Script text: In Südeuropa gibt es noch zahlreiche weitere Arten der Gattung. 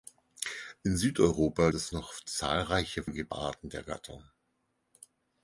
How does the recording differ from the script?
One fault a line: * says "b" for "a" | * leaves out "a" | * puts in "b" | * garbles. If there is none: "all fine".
* leaves out "gibt"
* says "gibt" for "weitere"